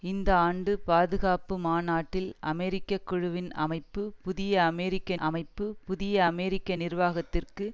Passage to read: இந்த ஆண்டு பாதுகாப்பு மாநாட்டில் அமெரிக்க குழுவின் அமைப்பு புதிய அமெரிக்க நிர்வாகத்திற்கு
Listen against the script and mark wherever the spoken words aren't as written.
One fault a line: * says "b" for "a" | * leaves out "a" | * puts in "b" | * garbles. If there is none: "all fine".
* puts in "அமைப்பு புதிய அமெரிக்க"